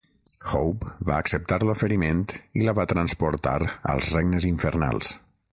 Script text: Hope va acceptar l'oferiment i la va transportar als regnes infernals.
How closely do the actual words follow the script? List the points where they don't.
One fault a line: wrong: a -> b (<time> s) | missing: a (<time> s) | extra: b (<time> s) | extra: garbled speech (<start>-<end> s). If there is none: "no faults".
no faults